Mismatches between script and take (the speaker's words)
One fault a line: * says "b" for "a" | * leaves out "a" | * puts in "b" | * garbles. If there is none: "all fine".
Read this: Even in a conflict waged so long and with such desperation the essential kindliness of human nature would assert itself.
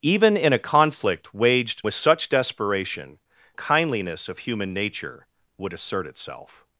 * leaves out "so long and"
* leaves out "the essential"